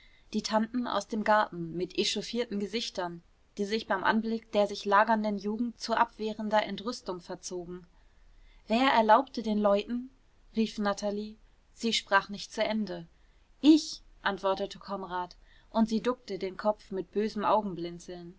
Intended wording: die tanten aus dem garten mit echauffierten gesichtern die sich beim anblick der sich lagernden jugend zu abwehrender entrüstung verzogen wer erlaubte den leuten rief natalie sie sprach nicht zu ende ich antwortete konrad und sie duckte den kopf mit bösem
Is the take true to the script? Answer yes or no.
yes